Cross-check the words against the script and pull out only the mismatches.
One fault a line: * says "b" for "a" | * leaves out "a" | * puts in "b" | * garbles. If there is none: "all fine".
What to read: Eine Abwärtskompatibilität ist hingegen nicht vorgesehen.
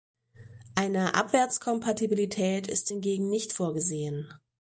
all fine